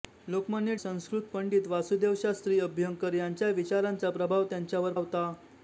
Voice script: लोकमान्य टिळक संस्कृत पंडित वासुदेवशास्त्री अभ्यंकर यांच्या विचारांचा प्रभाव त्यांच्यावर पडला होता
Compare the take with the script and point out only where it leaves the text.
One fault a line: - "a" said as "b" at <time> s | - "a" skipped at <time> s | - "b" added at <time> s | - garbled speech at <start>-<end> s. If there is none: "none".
- "टिळक" skipped at 0.8 s
- "पडला" skipped at 4.9 s